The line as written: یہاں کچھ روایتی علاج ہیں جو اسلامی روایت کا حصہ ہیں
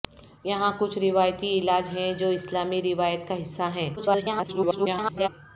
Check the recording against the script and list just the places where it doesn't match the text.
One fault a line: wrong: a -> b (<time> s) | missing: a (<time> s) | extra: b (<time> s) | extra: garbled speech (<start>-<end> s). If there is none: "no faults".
extra: garbled speech (4.0-5.3 s)